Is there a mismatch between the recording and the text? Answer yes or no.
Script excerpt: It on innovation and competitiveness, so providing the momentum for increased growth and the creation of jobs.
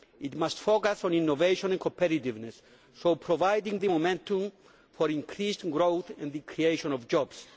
yes